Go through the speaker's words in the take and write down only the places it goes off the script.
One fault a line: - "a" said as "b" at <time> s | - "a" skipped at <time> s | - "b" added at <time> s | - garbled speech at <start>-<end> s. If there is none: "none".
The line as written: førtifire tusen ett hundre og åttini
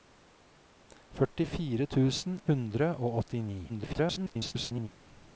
- "ett" skipped at 2.4 s
- garbled speech at 3.7-4.9 s